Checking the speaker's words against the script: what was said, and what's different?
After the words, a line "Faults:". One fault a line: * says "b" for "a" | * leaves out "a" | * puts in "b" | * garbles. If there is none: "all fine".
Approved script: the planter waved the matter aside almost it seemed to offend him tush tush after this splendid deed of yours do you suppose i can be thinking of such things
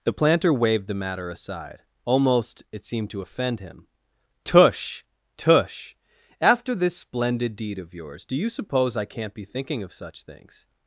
the planter waved the matter aside almost it seemed to offend him tush tush after this splendid deed of yours do you suppose i can't be thinking of such things
Faults:
* says "can't" for "can"